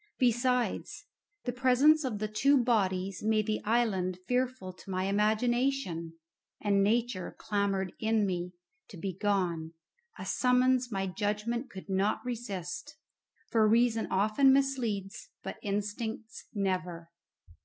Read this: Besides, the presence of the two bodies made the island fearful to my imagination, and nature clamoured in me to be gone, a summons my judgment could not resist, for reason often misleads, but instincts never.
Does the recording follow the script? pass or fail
pass